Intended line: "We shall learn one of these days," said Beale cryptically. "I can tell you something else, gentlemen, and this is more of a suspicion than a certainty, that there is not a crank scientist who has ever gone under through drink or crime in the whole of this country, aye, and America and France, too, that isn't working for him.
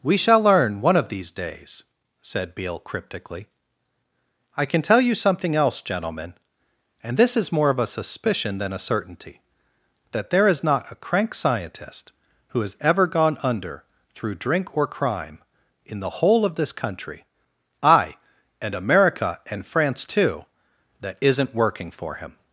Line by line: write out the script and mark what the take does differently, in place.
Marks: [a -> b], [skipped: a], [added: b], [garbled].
"We shall learn one of these days," said Beale cryptically. "I can tell you something else, gentlemen, and this is more of a suspicion than a certainty, that there is not a crank scientist who has ever gone under through drink or crime in the whole of this country, aye, and America and France, too, that isn't working for him.